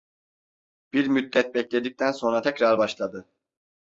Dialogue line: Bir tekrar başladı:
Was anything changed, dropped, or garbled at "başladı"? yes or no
no